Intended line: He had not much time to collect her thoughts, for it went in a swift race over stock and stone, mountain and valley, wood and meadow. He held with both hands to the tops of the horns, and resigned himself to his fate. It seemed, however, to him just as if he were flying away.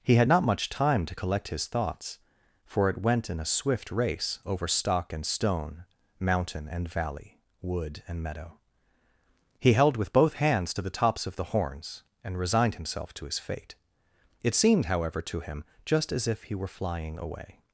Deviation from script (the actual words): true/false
true